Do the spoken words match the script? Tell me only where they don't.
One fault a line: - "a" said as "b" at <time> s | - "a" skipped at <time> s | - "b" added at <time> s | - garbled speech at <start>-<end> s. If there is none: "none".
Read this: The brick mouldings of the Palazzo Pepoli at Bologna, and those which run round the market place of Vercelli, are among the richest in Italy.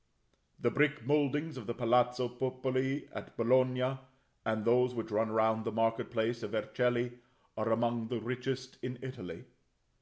none